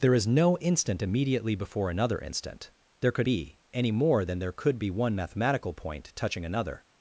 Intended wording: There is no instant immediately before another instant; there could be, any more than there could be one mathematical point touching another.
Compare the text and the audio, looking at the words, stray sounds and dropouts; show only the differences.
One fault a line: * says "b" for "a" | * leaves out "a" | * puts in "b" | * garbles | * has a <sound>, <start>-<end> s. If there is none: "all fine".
all fine